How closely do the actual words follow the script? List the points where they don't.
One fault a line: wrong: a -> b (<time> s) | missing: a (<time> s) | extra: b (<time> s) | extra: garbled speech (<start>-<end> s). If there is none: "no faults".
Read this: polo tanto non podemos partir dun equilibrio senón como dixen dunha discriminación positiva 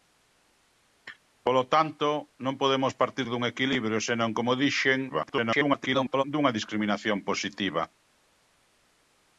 extra: garbled speech (5.1-6.2 s)